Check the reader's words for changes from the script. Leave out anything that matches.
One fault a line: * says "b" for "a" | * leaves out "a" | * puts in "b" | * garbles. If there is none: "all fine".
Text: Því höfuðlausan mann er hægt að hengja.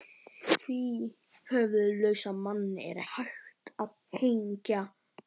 all fine